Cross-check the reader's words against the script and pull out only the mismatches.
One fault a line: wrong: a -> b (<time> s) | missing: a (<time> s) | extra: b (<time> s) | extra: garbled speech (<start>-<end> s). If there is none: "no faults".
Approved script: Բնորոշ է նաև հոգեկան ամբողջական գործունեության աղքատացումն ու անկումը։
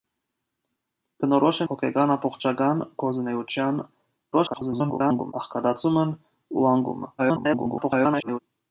missing: նաև (1.7 s)
extra: garbled speech (4.3-5.3 s)
extra: garbled speech (7.2-8.4 s)